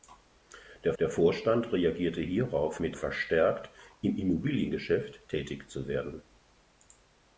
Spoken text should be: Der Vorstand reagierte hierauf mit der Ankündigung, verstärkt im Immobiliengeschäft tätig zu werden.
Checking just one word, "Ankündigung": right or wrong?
wrong